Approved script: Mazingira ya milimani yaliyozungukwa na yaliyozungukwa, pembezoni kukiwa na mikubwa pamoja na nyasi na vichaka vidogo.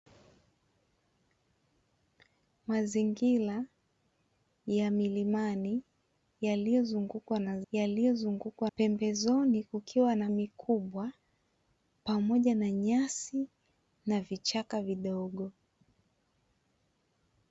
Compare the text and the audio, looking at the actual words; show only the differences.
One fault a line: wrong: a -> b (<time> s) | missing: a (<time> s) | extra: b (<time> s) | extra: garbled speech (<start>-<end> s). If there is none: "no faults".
no faults